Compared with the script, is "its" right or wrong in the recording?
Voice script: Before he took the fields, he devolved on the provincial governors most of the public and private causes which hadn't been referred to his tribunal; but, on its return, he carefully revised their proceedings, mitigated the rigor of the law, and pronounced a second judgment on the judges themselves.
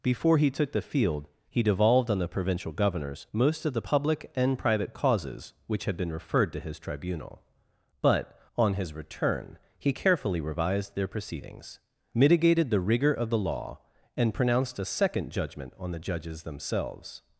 wrong